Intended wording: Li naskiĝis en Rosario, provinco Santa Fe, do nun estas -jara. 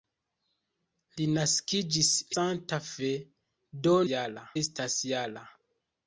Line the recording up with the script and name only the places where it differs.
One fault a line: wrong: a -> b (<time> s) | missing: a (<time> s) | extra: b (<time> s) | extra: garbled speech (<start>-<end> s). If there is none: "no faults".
missing: en Rosario provinco (2.1 s)
wrong: nun -> jara (4.1 s)